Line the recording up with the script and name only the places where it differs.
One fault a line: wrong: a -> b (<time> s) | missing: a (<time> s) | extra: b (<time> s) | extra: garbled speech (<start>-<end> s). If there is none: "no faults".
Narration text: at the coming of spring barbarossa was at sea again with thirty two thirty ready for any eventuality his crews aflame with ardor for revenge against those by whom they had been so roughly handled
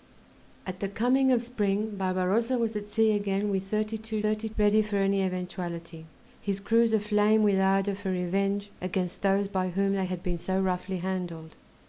no faults